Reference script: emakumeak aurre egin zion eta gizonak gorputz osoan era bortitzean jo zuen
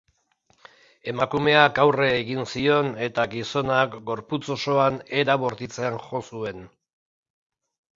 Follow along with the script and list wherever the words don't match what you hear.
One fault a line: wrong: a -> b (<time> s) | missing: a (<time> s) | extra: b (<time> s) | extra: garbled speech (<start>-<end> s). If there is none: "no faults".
no faults